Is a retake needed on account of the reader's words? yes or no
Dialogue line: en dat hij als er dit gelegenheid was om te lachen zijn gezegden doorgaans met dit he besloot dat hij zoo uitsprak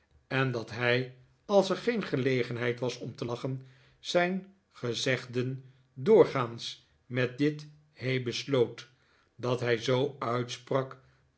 yes